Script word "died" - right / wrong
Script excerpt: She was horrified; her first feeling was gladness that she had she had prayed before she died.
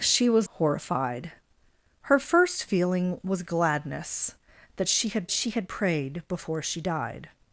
right